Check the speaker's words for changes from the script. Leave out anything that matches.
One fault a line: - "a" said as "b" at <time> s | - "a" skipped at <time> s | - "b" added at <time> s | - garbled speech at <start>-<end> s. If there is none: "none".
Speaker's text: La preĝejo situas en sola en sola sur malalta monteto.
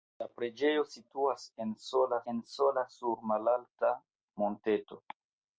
none